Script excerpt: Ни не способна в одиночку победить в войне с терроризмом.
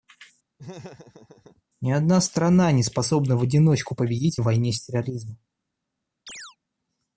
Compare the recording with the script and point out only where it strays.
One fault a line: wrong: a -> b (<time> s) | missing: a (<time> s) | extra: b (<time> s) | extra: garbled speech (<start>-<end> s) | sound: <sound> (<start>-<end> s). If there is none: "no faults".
sound: laugh (0.6-1.6 s)
extra: одна страна (1.9 s)
sound: chirp (6.3-6.6 s)